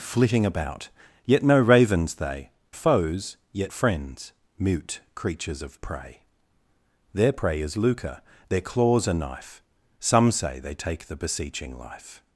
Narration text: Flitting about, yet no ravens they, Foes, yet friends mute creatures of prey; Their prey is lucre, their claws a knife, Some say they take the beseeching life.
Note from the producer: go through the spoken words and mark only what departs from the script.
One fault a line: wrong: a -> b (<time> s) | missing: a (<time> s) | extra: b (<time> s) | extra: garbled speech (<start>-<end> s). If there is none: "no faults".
no faults